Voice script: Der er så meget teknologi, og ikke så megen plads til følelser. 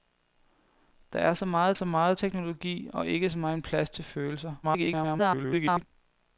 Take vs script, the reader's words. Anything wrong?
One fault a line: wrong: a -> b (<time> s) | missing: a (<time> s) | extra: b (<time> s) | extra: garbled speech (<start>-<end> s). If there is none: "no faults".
extra: så meget (1.7 s)
extra: garbled speech (4.6-5.8 s)